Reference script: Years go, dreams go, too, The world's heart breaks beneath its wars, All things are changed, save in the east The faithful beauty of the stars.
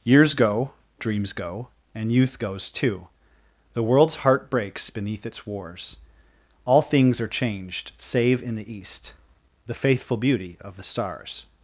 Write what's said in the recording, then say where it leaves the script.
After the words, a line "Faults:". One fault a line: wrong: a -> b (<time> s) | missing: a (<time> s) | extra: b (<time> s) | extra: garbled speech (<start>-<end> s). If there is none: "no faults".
Years go, dreams go, and youth goes too, The world's heart breaks beneath its wars, All things are changed, save in the east The faithful beauty of the stars.
Faults:
extra: and youth goes (1.9 s)